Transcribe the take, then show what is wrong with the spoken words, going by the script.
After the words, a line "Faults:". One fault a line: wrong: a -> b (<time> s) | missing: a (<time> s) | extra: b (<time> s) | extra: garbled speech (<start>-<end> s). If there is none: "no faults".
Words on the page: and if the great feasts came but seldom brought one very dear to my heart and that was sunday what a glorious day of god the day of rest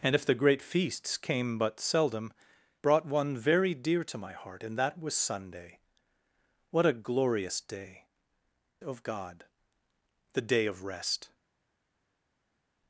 and if the great feasts came but seldom brought one very dear to my heart and that was sunday what a glorious day of god the day of rest
Faults:
no faults